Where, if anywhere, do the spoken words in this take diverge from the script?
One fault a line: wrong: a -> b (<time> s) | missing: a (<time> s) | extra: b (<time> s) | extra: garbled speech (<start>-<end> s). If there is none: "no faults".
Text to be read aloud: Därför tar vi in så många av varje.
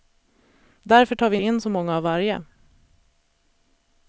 no faults